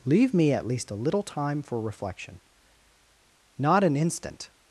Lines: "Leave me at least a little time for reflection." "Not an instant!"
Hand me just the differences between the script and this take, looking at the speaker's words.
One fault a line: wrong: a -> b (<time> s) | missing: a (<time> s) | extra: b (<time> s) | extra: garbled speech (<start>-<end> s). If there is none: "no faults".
no faults